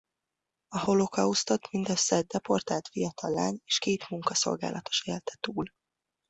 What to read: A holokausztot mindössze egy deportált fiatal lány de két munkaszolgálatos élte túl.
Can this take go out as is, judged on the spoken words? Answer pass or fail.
fail